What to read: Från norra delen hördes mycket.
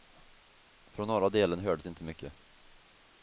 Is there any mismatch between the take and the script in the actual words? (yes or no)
yes